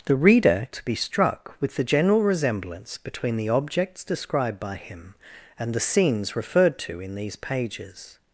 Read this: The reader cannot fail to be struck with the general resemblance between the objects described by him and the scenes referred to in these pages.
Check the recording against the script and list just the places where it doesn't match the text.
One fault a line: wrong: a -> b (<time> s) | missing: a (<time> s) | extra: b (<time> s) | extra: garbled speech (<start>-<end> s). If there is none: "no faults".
missing: cannot fail (0.7 s)